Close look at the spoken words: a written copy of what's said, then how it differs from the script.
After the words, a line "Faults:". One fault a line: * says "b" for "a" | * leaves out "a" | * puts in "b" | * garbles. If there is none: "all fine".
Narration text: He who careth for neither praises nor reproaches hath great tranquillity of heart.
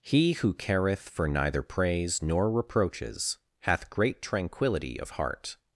He who careth for neither praise nor reproaches hath great tranquillity of heart.
Faults:
* says "praise" for "praises"